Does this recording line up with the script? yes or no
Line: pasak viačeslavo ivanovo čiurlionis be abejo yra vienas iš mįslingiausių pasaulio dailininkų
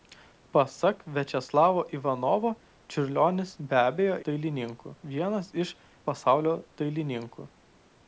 no